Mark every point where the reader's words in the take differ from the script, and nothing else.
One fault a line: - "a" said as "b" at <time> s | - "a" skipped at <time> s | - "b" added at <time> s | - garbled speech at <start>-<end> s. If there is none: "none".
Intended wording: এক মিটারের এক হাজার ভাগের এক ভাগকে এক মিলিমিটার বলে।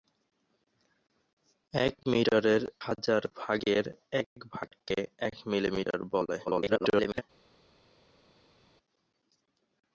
- "এক" skipped at 2.6 s
- garbled speech at 6.5-7.2 s